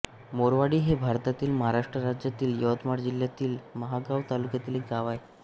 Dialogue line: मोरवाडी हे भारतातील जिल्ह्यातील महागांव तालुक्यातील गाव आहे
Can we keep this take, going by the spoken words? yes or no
no